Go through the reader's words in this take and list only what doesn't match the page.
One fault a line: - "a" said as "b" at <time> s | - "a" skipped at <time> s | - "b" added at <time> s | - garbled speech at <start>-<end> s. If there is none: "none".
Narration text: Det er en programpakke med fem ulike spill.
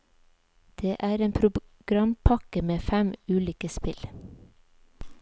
none